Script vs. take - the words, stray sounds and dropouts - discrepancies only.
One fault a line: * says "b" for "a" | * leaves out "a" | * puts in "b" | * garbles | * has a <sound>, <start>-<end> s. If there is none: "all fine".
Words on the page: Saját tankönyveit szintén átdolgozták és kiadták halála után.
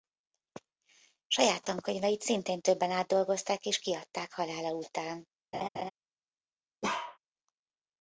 * puts in "többen"
* has a laugh, 5.5-5.9 s
* has a bark, 6.8-7.2 s